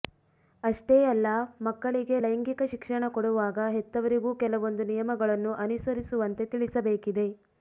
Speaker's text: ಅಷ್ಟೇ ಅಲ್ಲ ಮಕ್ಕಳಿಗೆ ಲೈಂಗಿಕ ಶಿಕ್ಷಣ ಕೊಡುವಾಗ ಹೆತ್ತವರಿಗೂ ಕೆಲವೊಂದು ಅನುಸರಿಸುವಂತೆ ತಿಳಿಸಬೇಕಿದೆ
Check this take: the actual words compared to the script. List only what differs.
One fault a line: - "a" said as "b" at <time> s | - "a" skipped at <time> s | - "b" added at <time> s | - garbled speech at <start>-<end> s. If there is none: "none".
- "ನಿಯಮಗಳನ್ನು" added at 4.9 s